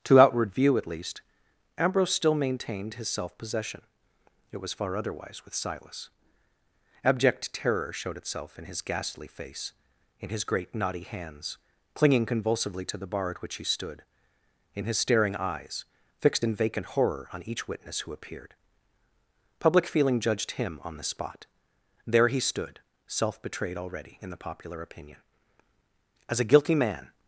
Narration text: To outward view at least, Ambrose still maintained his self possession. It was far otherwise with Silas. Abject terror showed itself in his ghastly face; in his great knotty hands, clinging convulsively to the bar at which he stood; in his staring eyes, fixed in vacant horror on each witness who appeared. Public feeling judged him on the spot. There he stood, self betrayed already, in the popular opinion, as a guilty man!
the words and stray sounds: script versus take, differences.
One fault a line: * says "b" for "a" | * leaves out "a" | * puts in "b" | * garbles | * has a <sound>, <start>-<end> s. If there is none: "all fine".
all fine